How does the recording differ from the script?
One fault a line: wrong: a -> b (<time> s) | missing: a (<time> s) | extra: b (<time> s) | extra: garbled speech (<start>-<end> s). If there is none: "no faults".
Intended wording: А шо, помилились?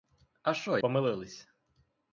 no faults